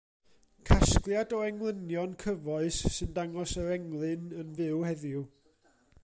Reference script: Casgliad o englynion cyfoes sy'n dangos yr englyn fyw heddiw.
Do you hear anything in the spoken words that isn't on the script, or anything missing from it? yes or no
yes